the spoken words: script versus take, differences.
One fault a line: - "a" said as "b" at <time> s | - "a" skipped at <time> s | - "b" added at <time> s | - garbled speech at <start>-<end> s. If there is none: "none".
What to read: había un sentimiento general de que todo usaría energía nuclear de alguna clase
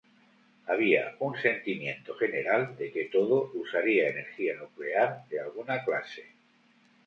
none